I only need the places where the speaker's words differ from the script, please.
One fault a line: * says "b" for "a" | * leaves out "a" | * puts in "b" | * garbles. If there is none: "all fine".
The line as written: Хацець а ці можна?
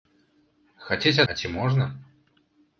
all fine